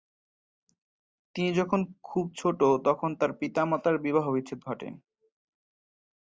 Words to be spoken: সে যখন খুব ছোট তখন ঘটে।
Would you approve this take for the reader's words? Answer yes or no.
no